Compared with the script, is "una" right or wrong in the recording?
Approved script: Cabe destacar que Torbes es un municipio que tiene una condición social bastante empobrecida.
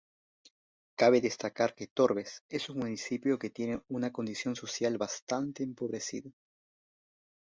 right